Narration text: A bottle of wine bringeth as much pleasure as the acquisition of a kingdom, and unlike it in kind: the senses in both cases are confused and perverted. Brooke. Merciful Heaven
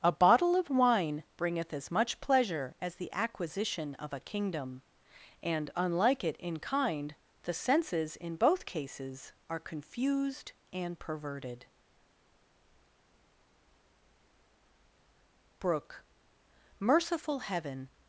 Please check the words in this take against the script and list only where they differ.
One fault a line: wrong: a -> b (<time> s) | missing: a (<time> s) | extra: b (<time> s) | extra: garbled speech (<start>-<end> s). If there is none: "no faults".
no faults